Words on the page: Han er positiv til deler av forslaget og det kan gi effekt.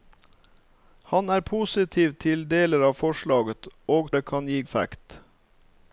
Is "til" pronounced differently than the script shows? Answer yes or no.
no